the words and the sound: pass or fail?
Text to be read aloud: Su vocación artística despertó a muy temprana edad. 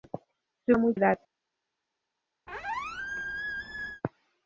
fail